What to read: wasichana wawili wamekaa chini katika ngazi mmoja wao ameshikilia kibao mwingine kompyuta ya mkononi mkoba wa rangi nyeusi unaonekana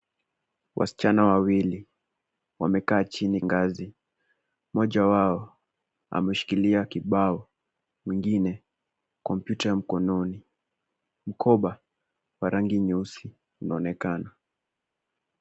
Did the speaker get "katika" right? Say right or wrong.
wrong